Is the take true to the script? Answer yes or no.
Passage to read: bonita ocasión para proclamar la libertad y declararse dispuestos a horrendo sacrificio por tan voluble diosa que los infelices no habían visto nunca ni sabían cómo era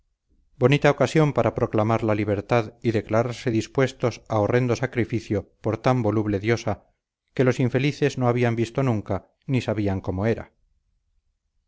yes